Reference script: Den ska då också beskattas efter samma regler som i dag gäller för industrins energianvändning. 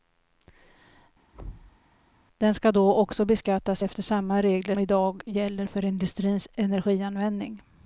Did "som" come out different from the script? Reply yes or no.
yes